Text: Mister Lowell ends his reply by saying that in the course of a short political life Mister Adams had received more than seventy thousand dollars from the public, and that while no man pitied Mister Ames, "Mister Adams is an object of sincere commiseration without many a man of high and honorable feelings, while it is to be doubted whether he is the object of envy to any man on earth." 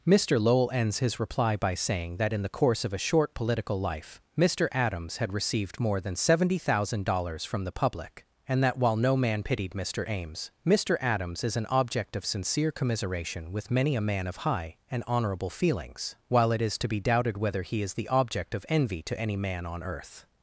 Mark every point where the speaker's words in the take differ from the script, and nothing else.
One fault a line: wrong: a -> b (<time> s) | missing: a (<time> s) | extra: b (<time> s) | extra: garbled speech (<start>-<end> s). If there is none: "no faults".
wrong: without -> with (13.5 s)